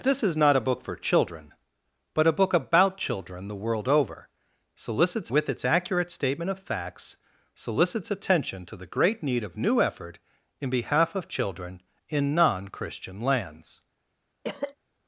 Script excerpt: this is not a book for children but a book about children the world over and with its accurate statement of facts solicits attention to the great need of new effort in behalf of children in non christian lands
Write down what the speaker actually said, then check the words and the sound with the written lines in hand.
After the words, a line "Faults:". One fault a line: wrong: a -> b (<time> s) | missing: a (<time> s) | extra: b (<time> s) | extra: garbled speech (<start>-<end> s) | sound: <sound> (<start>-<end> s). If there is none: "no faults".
this is not a book for children but a book about children the world over solicits with its accurate statement of facts solicits attention to the great need of new effort in behalf of children in non christian lands
Faults:
wrong: and -> solicits (4.8 s)
sound: cough (14.4-14.8 s)